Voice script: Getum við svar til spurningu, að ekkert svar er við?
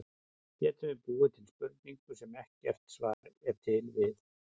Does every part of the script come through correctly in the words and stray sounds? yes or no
no